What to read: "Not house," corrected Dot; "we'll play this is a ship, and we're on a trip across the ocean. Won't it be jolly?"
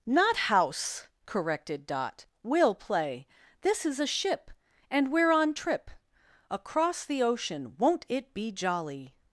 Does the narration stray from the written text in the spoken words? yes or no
yes